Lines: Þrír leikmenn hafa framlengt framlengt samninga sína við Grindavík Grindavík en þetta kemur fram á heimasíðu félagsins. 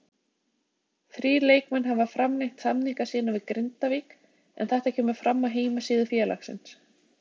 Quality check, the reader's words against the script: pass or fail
fail